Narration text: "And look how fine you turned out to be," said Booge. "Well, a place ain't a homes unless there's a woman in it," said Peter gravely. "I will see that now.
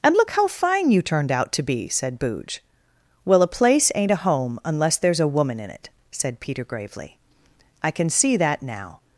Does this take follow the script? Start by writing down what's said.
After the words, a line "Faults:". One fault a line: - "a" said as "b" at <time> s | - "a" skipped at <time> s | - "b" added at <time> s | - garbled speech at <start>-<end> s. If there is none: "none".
"And look how fine you turned out to be," said Booge. "Well, a place ain't a home unless there's a woman in it," said Peter gravely. "I can see that now.
Faults:
- "homes" said as "home" at 4.2 s
- "will" said as "can" at 7.9 s